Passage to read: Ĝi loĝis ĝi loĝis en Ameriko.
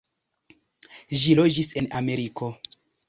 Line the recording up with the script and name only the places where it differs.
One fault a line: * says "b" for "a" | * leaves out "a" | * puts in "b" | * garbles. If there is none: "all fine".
* leaves out "ĝi loĝis"